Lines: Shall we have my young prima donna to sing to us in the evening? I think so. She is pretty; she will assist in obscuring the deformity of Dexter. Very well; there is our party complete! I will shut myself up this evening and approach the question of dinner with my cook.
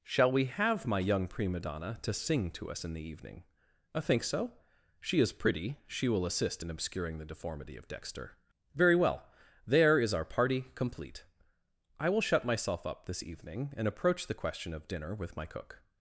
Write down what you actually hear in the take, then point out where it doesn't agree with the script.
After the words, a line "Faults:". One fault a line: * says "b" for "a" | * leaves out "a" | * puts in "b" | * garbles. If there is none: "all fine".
Shall we have my young prima donna to sing to us in the evening? I think so. She is pretty; she will assist in obscuring the deformity of Dexter. Very well; there is our party complete! I will shut myself up this evening and approach the question of dinner with my cook.
Faults:
all fine